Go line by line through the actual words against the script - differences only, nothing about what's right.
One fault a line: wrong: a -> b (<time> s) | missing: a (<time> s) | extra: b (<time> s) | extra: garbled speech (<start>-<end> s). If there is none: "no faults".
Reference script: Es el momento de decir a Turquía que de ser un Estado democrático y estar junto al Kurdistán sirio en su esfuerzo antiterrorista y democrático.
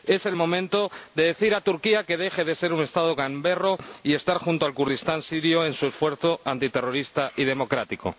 extra: deje (2.2 s)
wrong: democrático -> gamberro (3.1 s)